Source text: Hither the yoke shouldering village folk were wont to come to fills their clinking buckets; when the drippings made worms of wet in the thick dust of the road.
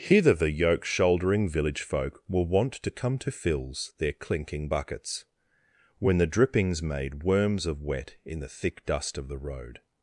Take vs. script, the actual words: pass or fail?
pass